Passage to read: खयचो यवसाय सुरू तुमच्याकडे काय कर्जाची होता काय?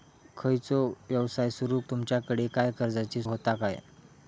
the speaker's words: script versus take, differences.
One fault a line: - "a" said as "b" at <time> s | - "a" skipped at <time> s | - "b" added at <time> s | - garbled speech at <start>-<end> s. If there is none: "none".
none